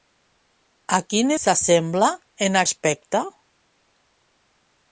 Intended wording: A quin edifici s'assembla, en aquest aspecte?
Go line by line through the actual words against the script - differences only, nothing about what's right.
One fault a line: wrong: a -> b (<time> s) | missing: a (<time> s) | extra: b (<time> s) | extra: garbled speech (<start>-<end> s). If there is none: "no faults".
missing: edifici (1.3 s)
missing: aquest (2.6 s)